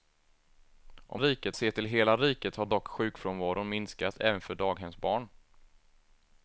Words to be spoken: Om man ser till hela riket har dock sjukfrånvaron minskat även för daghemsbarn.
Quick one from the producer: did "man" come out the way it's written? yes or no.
no